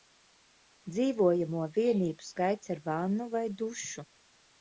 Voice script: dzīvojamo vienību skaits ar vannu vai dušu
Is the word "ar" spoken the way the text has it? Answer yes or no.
yes